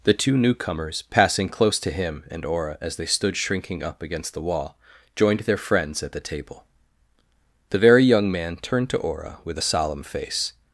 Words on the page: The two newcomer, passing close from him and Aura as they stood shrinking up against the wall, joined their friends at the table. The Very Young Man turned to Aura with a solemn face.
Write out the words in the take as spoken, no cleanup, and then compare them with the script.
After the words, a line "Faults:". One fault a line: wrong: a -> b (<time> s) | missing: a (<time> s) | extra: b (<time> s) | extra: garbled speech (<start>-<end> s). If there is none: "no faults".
The two newcomers, passing close to him and Aura as they stood shrinking up against the wall, joined their friends at the table. The Very Young Man turned to Aura with a solemn face.
Faults:
wrong: newcomer -> newcomers (0.3 s)
wrong: from -> to (1.8 s)